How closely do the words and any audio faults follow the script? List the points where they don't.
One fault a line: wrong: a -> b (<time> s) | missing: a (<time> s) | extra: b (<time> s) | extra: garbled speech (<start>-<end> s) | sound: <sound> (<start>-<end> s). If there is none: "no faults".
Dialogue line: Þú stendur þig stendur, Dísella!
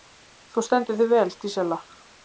wrong: stendur -> vel (1.1 s)